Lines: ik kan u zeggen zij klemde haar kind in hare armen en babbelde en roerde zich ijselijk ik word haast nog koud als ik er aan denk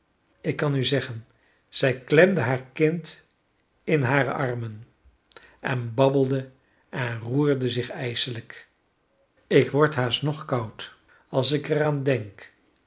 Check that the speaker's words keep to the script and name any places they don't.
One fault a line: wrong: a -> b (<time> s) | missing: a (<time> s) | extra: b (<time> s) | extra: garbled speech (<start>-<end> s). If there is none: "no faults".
no faults